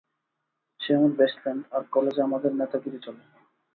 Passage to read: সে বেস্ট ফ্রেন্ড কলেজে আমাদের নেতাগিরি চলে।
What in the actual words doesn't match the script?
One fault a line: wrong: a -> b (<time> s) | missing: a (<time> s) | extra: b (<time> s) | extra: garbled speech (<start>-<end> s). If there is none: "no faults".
extra: আমার (0.9 s)
extra: আর (1.7 s)